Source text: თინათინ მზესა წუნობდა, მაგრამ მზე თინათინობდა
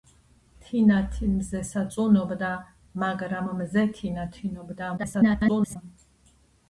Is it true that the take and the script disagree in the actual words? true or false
true